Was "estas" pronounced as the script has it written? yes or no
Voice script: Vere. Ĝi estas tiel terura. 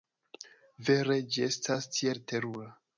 yes